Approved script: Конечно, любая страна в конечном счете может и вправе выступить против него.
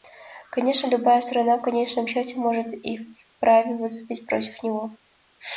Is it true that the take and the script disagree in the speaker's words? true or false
false